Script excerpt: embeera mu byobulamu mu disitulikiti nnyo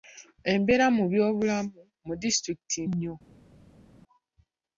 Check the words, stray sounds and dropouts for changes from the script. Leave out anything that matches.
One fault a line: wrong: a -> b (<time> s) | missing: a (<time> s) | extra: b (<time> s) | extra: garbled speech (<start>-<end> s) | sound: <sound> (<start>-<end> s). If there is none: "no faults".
no faults